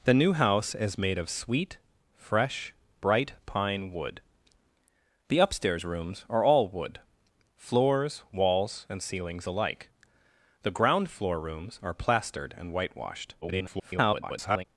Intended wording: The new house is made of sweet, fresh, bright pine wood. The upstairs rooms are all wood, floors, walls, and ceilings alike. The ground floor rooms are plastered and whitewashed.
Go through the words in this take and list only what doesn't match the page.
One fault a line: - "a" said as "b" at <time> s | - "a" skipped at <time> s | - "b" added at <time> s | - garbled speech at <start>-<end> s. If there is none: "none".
- garbled speech at 13.4-14.6 s